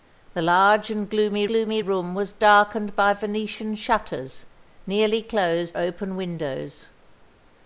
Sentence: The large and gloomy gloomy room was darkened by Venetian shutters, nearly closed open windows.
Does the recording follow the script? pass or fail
pass